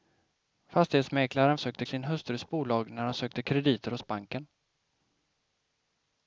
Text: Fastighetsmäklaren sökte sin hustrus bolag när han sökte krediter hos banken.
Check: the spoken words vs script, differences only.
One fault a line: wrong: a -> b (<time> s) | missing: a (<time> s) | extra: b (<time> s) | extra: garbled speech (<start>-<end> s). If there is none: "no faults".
no faults